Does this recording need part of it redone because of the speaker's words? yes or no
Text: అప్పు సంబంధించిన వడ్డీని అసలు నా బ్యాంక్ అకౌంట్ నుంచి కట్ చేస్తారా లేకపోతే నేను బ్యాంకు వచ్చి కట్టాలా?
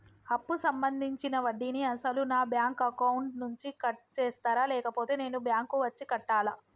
no